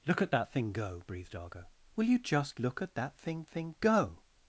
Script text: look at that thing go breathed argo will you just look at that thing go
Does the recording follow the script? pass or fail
fail